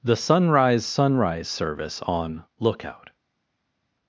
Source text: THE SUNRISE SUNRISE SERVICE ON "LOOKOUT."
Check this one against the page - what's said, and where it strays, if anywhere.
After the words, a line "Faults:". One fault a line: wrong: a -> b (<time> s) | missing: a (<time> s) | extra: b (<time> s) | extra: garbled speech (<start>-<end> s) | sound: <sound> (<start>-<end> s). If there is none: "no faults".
THE SUNRISE SUNRISE SERVICE ON "LOOKOUT."
Faults:
no faults